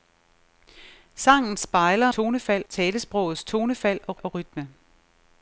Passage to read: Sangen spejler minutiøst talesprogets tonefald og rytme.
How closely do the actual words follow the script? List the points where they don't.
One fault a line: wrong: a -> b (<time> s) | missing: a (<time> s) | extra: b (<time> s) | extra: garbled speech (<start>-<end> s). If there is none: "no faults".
wrong: minutiøst -> tonefald (2.1 s)
extra: og (4.2 s)